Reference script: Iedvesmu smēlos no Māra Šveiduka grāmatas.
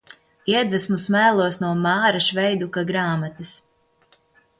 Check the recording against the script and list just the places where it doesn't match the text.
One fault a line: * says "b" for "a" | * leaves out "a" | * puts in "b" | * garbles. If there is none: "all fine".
all fine